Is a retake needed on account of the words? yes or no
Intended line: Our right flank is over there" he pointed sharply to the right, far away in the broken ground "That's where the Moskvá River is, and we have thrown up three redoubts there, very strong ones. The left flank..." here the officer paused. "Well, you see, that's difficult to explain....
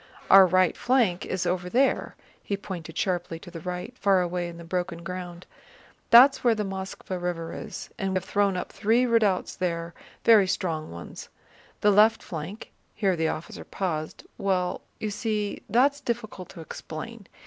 yes